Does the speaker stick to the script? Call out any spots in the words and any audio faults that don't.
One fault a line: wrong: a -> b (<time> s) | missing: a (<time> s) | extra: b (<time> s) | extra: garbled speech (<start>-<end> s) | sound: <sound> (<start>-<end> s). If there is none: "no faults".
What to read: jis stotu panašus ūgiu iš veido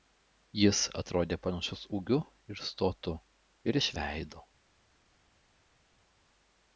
wrong: stotu -> atrodė (1.0 s)
extra: ir stotu ir (2.5 s)